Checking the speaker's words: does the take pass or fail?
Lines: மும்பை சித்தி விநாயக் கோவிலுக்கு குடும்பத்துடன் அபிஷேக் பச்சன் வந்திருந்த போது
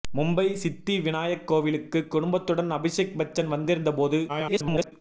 fail